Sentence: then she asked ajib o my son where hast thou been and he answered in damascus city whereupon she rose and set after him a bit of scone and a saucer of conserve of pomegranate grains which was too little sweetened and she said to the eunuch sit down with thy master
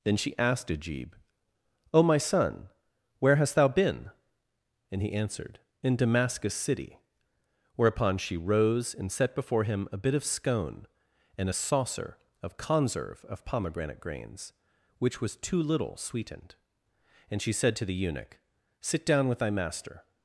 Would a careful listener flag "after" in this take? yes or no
yes